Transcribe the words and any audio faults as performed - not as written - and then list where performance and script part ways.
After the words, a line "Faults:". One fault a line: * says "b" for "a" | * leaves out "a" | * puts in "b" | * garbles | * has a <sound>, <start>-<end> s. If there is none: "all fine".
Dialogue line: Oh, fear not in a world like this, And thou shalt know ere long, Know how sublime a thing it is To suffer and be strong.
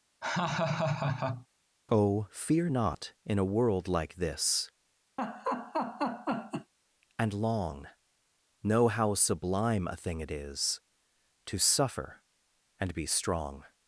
Oh, fear not in a world like this, And long, Know how sublime a thing it is To suffer and be strong.
Faults:
* has a laugh, 0.2-1.5 s
* has a laugh, 5.2-6.7 s
* leaves out "thou shalt know ere"